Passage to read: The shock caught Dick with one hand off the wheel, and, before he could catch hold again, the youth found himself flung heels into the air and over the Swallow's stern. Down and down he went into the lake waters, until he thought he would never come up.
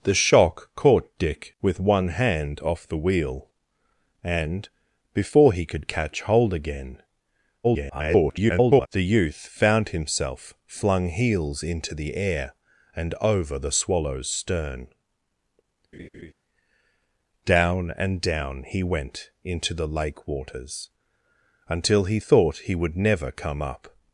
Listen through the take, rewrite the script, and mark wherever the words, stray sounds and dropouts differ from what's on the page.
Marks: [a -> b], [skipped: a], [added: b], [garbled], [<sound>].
The shock caught Dick with one hand off the wheel, and, before he could catch hold again, [garbled] the youth found himself flung heels into the air and over the Swallow's stern. [laugh] Down and down he went into the lake waters, until he thought he would never come up.